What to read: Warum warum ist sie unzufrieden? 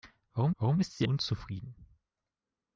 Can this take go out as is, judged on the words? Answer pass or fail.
pass